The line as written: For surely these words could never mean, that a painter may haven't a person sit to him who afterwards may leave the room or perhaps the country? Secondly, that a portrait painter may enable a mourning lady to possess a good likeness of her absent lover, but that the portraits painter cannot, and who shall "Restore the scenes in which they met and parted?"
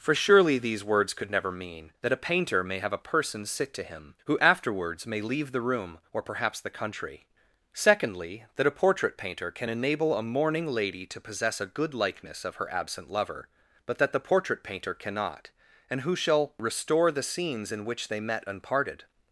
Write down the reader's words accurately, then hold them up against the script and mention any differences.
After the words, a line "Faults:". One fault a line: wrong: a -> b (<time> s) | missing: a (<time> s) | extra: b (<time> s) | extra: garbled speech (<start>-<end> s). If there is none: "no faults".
For surely these words could never mean, that a painter may have a person sit to him who afterwards may leave the room or perhaps the country? Secondly, that a portrait painter can enable a mourning lady to possess a good likeness of her absent lover, but that the portrait painter cannot, and who shall "Restore the scenes in which they met and parted?"
Faults:
wrong: haven't -> have (2.8 s)
wrong: may -> can (9.5 s)
wrong: portraits -> portrait (14.2 s)